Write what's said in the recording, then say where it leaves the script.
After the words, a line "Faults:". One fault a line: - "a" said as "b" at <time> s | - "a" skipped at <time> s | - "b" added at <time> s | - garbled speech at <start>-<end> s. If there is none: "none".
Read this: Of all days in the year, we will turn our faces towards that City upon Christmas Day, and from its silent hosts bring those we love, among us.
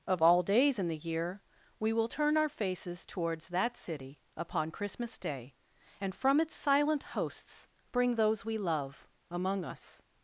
Of all days in the year, we will turn our faces towards that City upon Christmas Day, and from its silent hosts bring those we love, among us.
Faults:
none